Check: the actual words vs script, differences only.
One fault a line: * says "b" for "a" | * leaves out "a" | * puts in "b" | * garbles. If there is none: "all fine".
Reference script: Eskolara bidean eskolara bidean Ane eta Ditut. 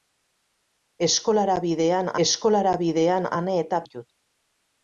all fine